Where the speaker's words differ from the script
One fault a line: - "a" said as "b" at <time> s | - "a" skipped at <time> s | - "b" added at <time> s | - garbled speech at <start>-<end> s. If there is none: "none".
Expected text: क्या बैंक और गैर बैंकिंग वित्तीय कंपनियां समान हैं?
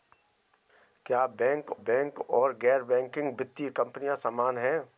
- "बैंक" added at 1.7 s